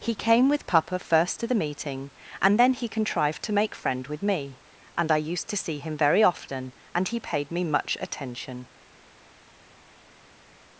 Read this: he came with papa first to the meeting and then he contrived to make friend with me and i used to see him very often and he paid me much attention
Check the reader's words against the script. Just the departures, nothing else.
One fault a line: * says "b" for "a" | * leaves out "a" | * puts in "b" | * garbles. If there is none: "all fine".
all fine